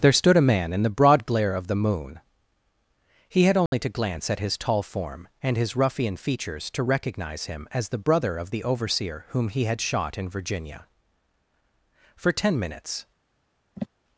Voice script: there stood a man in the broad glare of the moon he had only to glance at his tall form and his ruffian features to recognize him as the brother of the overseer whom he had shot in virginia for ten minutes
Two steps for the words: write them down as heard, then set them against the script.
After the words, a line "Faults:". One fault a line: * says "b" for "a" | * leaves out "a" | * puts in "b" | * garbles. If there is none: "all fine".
there stood a man in the broad glare of the moon he had only to glance at his tall form and his ruffian features to recognize him as the brother of the overseer whom he had shot in virginia for ten minutes
Faults:
all fine